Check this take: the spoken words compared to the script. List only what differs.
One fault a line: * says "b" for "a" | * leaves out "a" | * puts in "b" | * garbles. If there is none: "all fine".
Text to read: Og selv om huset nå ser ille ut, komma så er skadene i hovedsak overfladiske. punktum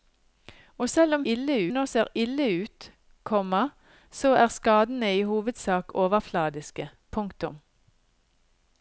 * says "ille" for "huset"